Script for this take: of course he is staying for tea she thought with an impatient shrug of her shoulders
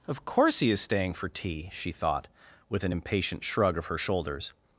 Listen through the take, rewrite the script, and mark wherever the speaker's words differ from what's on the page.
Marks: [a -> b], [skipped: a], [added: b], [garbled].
of course he is staying for tea she thought with an impatient shrug of her shoulders